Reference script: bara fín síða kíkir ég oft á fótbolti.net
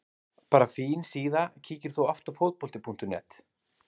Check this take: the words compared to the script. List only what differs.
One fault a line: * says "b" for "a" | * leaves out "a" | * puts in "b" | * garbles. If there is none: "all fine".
* says "þú" for "ég"